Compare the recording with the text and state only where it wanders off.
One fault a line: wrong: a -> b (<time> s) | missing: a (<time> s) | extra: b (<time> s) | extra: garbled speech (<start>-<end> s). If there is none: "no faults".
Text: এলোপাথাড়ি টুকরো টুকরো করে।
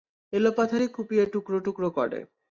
extra: কুপিয়ে (0.9 s)